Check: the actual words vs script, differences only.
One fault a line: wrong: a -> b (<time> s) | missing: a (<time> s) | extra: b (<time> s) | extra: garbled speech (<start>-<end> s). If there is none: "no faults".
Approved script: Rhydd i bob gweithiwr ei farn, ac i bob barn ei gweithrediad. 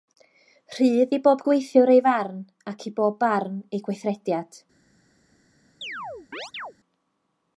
no faults